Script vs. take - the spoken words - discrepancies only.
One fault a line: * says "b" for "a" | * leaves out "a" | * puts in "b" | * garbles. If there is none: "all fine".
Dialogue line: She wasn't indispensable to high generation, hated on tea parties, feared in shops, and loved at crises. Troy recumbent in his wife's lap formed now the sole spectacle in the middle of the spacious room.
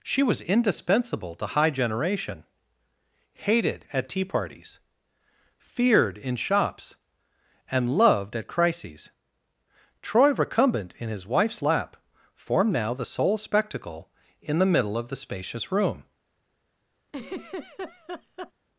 * says "was" for "wasn't"
* says "at" for "on"